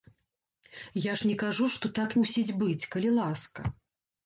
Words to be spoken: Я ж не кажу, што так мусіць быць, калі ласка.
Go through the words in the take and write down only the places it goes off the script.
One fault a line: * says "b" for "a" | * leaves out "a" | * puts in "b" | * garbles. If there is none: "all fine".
all fine